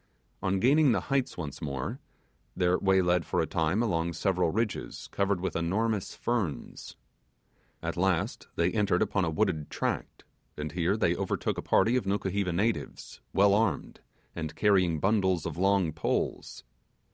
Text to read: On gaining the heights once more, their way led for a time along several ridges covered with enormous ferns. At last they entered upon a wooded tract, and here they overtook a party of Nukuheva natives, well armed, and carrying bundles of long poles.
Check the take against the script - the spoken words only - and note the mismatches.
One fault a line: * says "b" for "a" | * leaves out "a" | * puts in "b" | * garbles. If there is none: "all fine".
all fine